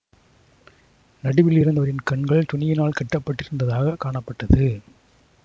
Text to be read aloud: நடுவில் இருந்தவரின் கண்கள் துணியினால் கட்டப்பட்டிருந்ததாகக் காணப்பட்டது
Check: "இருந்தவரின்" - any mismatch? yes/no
no